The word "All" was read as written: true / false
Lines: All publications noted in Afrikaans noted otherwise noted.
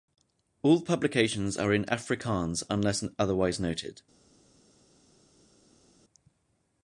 true